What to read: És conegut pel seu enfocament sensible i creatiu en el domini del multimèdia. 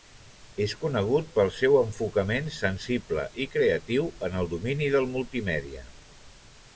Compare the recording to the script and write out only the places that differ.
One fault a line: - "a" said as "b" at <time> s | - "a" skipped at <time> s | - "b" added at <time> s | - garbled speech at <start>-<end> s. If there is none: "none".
none